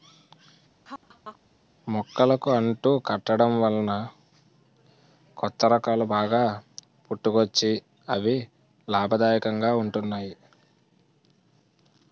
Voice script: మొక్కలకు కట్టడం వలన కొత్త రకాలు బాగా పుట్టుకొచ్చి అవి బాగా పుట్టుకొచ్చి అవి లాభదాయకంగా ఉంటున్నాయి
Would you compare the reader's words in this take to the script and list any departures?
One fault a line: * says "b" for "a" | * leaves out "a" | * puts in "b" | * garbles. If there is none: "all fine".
* puts in "అంటు"
* leaves out "బాగా పుట్టుకొచ్చి అవి"